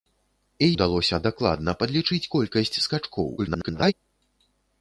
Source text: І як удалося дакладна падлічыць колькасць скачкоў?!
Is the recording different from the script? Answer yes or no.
yes